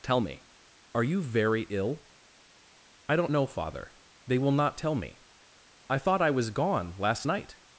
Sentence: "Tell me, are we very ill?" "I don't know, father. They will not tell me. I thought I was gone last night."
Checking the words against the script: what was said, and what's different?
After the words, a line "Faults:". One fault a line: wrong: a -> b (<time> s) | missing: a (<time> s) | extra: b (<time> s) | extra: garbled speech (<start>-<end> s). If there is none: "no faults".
"Tell me, are you very ill?" "I don't know, father. They will not tell me. I thought I was gone last night."
Faults:
wrong: we -> you (1.0 s)